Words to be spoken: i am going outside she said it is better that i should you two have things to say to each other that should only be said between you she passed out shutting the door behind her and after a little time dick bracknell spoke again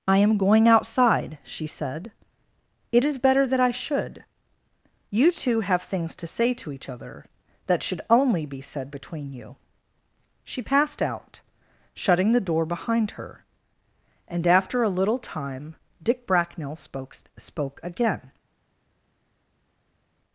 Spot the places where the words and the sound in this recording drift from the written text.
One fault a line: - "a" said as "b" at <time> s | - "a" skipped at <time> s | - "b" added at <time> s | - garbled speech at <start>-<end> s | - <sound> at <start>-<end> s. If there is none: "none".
- "spoke" added at 17.4 s